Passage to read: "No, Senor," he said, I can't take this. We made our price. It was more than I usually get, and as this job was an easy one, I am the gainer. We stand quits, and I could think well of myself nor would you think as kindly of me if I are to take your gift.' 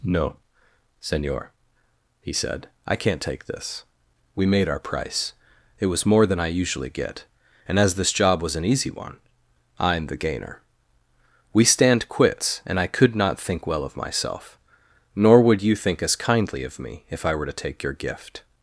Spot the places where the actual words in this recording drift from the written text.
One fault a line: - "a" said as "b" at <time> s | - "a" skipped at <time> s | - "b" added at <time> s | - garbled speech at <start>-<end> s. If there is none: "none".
- "not" added at 13.1 s
- "are" said as "were" at 17.3 s